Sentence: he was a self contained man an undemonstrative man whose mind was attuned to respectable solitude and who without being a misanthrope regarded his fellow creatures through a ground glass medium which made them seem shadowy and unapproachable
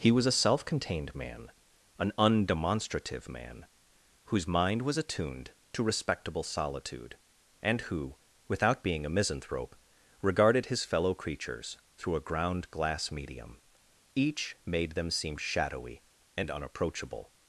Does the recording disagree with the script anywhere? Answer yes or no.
yes